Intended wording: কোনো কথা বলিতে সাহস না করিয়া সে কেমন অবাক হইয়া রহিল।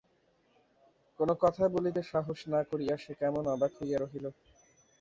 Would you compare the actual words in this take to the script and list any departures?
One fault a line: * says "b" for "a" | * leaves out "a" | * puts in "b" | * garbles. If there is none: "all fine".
all fine